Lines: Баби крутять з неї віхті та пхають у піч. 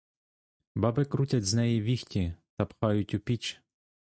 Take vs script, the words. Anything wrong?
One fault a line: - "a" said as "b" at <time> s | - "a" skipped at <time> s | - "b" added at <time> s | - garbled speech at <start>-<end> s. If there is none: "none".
none